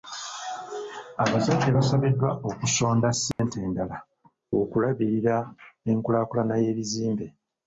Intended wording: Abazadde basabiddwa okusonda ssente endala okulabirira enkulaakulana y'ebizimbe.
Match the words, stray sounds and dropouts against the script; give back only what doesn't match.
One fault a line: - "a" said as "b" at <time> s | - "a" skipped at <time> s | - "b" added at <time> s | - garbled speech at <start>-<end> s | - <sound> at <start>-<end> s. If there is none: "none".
- dropout at 3.3-3.4 s